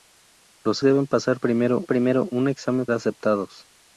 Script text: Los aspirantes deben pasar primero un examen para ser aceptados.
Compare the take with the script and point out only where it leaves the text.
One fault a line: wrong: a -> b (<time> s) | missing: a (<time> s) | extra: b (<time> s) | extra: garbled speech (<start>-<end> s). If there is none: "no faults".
missing: aspirantes (0.8 s)
extra: primero (1.8 s)
missing: para ser (2.9 s)